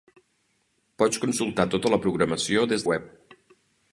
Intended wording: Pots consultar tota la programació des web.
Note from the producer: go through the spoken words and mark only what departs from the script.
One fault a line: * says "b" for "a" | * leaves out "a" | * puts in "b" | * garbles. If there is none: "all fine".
all fine